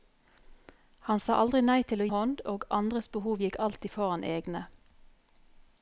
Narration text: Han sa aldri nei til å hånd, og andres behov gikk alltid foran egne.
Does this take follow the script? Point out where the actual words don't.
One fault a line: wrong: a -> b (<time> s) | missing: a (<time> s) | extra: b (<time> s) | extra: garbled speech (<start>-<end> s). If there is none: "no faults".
no faults